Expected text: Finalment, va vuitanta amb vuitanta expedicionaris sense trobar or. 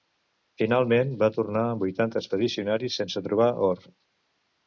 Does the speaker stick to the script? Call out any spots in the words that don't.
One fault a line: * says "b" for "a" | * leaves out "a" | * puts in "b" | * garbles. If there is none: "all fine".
* says "tornar" for "vuitanta"